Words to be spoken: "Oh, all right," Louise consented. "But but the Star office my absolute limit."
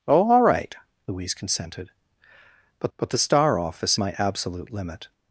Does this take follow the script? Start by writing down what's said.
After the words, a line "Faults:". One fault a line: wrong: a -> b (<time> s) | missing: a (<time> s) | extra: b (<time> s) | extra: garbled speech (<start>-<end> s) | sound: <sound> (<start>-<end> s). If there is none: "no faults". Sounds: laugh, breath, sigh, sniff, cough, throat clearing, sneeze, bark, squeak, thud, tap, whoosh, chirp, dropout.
"Oh, all right," Louise consented. "But but the Star office my absolute limit."
Faults:
no faults